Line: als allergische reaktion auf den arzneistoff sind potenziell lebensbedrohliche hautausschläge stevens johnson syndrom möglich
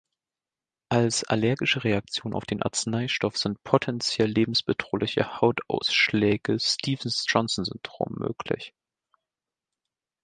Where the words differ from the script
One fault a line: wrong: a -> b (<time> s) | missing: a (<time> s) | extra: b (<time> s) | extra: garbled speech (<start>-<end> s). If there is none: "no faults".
no faults